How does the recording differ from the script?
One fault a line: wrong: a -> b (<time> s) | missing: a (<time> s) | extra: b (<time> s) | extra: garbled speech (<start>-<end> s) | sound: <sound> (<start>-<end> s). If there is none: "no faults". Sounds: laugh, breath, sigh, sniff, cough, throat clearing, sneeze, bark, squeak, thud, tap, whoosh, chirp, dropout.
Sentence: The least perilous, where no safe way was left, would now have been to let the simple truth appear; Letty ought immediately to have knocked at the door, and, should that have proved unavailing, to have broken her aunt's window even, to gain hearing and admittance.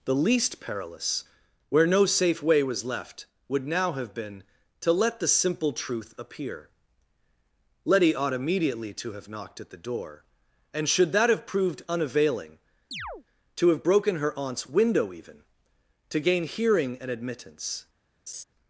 sound: chirp (12.9-13.2 s)
sound: laugh (18.3-18.4 s)